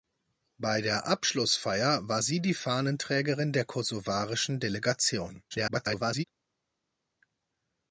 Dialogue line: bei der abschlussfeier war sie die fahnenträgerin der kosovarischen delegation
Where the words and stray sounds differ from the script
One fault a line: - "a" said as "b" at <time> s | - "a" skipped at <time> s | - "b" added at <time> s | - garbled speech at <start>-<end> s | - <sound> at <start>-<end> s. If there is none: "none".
- garbled speech at 5.5-6.2 s